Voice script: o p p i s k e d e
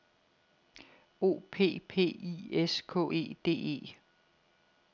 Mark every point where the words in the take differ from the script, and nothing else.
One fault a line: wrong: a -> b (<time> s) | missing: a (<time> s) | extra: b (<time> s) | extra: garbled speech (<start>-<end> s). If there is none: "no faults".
no faults